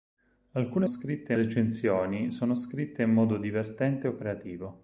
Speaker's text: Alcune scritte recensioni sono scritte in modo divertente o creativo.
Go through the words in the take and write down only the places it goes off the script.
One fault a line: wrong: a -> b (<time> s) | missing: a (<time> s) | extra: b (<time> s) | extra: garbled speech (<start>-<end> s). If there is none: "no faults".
no faults